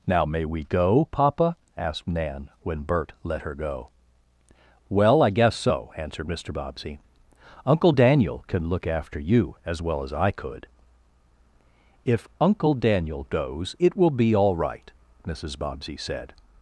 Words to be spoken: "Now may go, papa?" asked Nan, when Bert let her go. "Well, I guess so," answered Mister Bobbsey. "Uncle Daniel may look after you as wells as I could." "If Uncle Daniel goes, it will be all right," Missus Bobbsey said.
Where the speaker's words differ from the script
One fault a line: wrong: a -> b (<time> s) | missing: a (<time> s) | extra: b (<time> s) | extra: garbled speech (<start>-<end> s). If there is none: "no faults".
extra: we (0.5 s)
wrong: may -> can (8.5 s)
wrong: wells -> well (9.8 s)